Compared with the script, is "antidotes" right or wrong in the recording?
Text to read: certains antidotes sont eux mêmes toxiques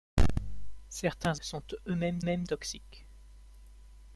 wrong